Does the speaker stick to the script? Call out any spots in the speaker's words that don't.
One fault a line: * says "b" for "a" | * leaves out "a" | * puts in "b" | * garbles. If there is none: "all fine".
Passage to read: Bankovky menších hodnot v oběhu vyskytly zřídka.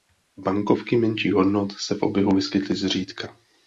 * puts in "se"